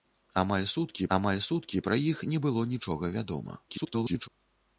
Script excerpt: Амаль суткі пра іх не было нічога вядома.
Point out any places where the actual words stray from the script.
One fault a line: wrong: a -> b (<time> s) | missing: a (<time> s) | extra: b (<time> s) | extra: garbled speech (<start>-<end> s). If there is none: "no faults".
extra: амаль суткі (1.2 s)
extra: garbled speech (3.7-4.3 s)